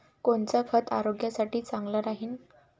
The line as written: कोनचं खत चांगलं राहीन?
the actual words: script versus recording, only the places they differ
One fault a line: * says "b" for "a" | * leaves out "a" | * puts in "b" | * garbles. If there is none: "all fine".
* puts in "आरोग्यासाठी"